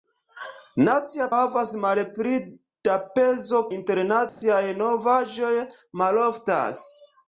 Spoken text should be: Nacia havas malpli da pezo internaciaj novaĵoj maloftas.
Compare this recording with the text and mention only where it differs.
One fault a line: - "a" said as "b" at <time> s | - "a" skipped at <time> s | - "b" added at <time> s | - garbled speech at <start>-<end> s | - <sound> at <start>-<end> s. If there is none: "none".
- dropout at 4.3-4.4 s